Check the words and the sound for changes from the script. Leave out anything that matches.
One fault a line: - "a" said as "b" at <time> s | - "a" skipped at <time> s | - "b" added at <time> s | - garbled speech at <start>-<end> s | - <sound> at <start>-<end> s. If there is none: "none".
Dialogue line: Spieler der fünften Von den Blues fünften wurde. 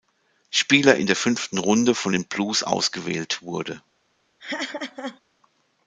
- "in" added at 0.9 s
- "Runde" added at 1.6 s
- "fünften" said as "ausgewählt" at 2.6 s
- laugh at 4.4-5.2 s